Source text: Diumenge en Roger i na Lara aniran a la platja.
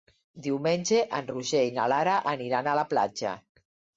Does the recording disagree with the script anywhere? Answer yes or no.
no